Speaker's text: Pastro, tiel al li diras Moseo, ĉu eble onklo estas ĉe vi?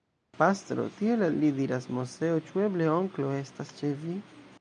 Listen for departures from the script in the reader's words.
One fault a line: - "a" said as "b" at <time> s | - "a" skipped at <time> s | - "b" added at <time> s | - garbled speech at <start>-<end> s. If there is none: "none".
none